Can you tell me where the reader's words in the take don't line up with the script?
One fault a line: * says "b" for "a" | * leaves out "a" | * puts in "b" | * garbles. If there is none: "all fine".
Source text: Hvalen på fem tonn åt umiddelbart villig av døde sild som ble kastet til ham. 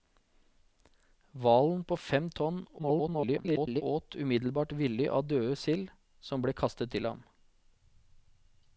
* garbles